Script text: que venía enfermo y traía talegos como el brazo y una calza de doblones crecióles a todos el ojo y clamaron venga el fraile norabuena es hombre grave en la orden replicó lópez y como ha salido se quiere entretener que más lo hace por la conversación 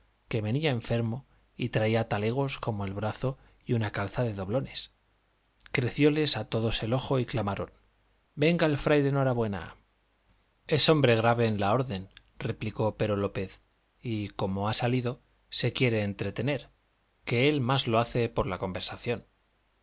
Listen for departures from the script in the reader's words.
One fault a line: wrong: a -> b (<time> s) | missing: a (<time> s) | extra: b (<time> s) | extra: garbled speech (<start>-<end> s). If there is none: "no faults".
extra: pero (13.0 s)
extra: él (17.5 s)